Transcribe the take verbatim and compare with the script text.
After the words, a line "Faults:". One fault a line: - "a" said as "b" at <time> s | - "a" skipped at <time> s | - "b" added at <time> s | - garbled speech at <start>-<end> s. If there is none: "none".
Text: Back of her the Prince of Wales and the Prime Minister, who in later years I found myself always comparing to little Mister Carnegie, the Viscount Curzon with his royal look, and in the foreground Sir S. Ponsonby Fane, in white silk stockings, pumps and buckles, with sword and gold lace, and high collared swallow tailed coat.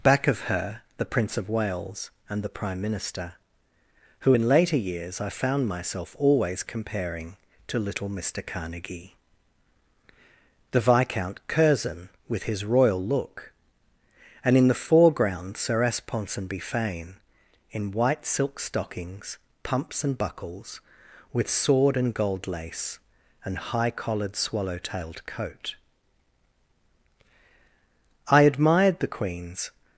Back of her the Prince of Wales and the Prime Minister, who in later years I found myself always comparing to little Mister Carnegie, the Viscount Curzon with his royal look, and in the foreground Sir S. Ponsonby Fane, in white silk stockings, pumps and buckles, with sword and gold lace, and high collared swallow tailed coat. I admired the queen's
Faults:
- "I admired the queen's" added at 28.3 s